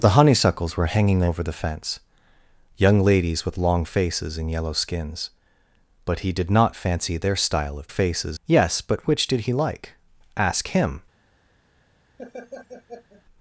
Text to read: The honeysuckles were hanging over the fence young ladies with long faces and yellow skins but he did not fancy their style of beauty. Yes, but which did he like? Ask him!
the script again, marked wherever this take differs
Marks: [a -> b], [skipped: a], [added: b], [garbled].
The honeysuckles were hanging over the fence young ladies with long faces and yellow skins but he did not fancy their style of [beauty. -> faces] Yes, but which did he like? Ask him!